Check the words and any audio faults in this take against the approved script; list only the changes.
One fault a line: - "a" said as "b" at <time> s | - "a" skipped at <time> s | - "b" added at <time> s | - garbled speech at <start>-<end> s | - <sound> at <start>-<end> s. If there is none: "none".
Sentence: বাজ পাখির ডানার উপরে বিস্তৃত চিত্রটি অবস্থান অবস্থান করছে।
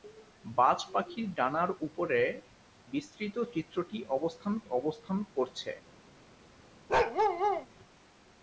- bark at 6.9-7.7 s